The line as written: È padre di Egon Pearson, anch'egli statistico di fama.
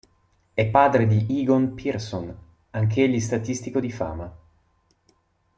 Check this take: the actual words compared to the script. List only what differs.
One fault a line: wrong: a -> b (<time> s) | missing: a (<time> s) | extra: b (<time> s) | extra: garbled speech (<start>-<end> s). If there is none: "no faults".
no faults